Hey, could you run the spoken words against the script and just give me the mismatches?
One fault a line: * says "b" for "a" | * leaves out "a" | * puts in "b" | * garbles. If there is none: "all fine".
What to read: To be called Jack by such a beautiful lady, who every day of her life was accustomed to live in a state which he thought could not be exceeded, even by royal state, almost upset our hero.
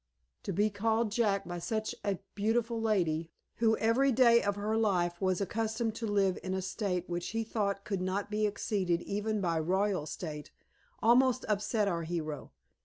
all fine